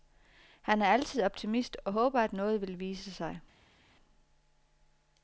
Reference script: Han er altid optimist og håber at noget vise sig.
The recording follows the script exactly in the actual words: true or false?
false